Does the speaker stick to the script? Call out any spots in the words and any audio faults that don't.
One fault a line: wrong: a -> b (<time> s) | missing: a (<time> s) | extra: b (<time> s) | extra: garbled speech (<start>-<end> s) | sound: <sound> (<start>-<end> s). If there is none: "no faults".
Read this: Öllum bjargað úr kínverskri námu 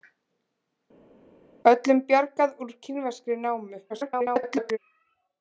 extra: garbled speech (3.9-4.8 s)